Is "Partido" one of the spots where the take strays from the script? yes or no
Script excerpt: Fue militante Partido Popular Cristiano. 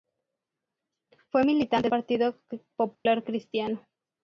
no